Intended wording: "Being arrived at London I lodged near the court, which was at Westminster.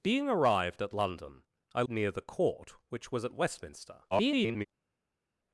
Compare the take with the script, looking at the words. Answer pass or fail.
fail